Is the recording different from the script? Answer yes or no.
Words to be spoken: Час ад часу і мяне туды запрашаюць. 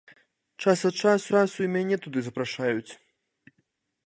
yes